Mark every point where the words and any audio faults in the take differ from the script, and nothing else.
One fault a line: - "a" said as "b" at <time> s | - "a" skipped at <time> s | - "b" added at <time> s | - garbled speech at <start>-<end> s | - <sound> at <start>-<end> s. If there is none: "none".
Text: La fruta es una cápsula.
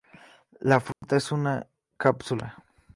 - dropout at 0.9-1.0 s